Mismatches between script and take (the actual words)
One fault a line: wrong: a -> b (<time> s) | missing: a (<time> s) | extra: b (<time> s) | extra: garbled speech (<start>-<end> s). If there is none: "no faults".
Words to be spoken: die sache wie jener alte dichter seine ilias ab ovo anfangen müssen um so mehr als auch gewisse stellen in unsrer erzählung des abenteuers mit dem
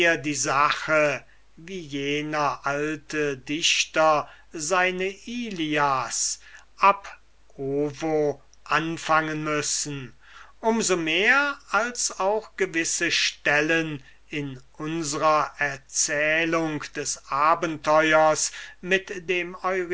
no faults